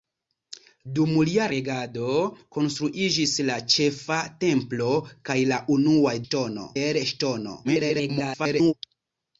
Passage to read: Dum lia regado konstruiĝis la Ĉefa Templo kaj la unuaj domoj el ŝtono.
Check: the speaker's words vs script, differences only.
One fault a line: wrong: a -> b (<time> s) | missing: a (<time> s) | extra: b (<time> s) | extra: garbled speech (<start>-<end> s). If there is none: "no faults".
wrong: domoj -> ŝtono (6.3 s)
extra: garbled speech (7.6-8.7 s)